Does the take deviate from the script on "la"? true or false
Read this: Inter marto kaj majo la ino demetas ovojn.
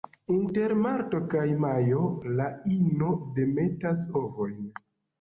false